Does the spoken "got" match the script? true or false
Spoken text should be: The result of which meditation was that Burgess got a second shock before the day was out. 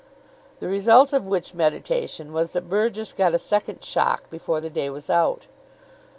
true